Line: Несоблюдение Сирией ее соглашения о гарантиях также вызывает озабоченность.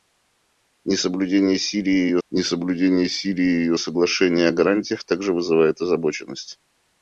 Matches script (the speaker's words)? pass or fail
fail